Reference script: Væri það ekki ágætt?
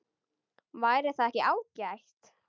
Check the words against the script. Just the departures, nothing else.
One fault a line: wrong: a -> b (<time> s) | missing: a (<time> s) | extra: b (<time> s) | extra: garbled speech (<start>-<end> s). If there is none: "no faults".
no faults